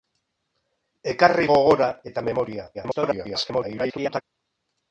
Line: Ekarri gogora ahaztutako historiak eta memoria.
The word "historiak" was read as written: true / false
false